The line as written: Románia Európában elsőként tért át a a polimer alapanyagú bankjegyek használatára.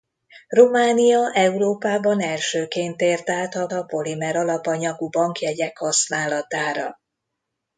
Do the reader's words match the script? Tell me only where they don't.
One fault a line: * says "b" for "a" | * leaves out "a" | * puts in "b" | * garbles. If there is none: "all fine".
all fine